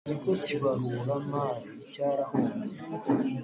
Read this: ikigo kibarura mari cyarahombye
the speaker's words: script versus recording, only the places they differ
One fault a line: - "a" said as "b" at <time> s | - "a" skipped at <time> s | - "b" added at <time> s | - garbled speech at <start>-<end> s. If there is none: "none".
none